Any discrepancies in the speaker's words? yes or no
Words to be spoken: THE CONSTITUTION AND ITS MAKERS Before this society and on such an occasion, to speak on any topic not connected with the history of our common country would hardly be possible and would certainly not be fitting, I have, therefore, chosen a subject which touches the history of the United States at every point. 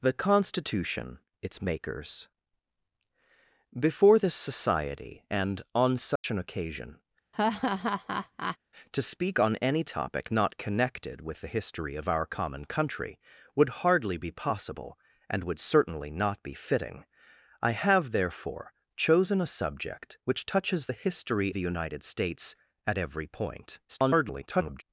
yes